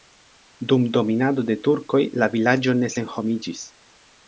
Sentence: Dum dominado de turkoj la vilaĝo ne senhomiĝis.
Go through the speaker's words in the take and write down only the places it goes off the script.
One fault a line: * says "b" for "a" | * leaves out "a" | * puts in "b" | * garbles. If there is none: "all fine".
all fine